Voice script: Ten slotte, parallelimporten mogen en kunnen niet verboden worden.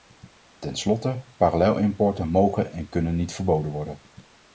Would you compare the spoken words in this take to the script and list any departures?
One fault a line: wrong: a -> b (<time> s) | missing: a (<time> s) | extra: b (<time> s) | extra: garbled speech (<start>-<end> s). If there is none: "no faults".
no faults